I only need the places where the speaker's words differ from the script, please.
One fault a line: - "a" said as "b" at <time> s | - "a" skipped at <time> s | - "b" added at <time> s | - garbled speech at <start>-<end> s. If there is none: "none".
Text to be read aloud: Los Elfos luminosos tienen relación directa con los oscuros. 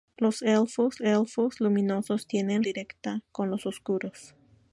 - "Elfos" added at 1.0 s
- "relación" skipped at 2.6 s